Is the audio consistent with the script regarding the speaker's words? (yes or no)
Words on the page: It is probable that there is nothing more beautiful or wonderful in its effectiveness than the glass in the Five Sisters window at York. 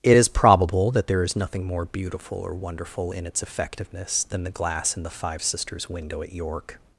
yes